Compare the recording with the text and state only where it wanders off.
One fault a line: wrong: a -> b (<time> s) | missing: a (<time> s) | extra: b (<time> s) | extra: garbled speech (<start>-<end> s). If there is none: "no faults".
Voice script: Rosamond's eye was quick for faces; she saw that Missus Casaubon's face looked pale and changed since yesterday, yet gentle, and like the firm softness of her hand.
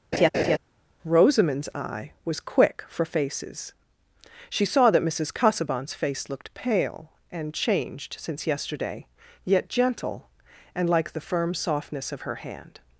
no faults